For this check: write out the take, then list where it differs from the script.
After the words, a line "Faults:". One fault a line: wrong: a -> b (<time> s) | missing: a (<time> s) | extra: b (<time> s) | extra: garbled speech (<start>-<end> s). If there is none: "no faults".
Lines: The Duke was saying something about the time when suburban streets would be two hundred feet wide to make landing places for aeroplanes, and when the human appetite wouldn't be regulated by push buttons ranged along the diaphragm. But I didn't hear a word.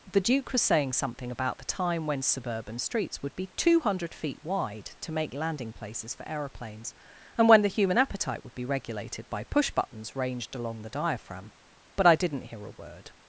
The Duke was saying something about the time when suburban streets would be two hundred feet wide to make landing places for aeroplanes, and when the human appetite would be regulated by push buttons ranged along the diaphragm. But I didn't hear a word.
Faults:
wrong: wouldn't -> would (8.4 s)